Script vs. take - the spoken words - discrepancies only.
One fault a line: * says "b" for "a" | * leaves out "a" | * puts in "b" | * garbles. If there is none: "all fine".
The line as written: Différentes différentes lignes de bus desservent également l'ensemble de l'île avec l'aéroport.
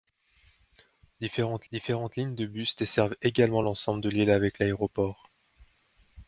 all fine